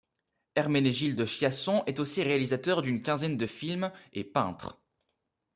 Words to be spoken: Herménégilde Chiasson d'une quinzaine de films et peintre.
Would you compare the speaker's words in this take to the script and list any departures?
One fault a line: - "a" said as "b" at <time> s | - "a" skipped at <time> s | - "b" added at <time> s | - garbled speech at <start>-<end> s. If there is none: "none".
- "est aussi réalisateur" added at 1.9 s